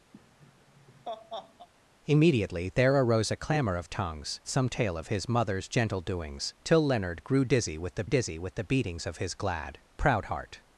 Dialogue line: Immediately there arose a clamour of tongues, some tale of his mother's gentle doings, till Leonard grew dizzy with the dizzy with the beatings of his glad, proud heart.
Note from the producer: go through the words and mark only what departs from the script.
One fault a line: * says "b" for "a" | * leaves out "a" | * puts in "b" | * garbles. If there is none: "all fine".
all fine